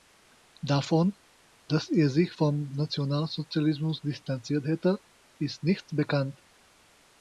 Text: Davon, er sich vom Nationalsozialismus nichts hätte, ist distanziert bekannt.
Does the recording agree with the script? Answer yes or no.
no